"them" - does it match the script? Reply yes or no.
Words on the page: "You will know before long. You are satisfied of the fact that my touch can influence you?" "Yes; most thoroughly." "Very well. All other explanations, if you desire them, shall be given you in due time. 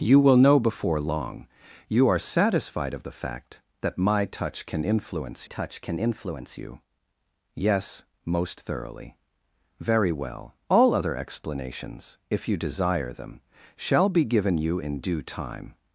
yes